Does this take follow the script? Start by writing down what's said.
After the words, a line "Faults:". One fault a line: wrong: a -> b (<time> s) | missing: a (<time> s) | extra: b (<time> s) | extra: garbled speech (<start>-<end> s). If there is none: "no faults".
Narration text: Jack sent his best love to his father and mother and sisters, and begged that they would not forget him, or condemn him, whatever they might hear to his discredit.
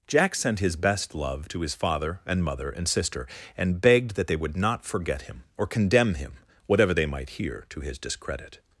Jack sent his best love to his father and mother and sister, and begged that they would not forget him, or condemn him, whatever they might hear to his discredit.
Faults:
wrong: sisters -> sister (2.9 s)